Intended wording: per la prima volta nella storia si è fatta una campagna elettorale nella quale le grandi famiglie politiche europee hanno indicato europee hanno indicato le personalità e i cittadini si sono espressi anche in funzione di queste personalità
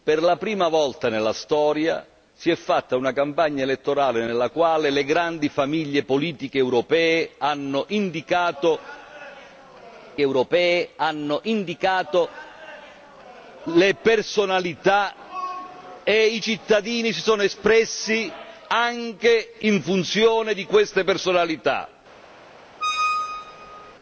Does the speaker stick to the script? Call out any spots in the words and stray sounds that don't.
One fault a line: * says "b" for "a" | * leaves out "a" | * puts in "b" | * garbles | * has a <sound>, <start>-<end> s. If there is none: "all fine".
* has a squeak, 22.8-23.9 s